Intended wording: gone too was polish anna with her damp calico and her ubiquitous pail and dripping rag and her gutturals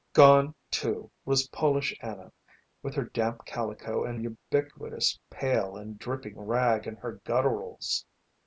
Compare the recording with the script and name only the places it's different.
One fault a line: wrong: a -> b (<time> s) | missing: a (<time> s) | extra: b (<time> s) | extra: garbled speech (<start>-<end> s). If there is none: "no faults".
missing: her (4.2 s)